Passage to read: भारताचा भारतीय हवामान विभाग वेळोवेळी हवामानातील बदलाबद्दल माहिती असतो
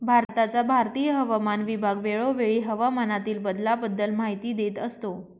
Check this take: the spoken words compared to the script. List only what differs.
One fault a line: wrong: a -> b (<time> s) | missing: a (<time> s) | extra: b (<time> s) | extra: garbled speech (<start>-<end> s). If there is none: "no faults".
extra: देत (4.5 s)